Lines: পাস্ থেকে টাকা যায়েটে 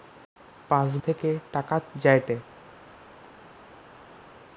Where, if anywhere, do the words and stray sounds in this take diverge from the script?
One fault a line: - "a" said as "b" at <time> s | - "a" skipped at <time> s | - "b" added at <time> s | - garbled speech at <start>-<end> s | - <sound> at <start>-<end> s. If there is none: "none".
none